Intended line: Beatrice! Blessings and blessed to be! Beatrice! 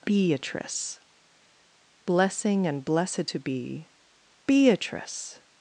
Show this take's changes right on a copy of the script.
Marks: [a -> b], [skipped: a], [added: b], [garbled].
Beatrice! [Blessings -> Blessing] and blessed to be! Beatrice!